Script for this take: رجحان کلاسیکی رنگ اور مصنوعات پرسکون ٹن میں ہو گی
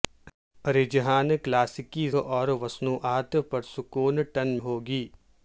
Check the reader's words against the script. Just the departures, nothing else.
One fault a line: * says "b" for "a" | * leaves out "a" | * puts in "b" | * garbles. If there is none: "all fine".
* leaves out "رنگ"
* leaves out "میں"